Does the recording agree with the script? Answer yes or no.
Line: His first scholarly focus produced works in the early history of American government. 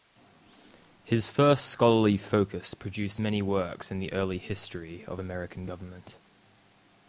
no